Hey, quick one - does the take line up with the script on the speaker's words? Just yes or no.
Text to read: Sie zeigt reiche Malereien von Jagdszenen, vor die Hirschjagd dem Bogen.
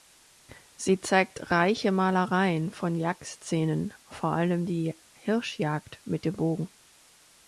no